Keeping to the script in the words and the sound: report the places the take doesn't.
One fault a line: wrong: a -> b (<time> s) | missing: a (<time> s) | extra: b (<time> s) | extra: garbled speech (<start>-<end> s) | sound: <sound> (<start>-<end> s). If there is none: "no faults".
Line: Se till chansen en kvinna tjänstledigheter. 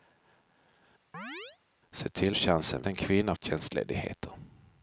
sound: chirp (1.1-1.6 s)